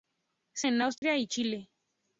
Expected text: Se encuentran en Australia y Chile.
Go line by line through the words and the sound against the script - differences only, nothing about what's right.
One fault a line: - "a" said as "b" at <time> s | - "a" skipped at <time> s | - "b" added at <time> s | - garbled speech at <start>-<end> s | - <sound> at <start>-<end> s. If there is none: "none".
- "encuentran" skipped at 0.7 s
- dropout at 1.0-1.0 s